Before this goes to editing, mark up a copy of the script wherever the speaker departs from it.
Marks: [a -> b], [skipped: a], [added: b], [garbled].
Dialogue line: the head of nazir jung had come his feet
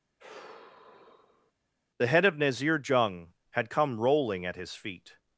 the head of nazir jung had come [added: rolling at] his feet